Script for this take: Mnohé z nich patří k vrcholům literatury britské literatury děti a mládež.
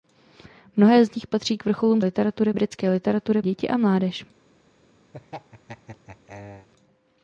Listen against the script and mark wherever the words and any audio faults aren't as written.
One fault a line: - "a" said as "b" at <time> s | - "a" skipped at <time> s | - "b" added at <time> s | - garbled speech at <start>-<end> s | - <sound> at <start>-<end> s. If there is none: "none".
- laugh at 5.1-6.7 s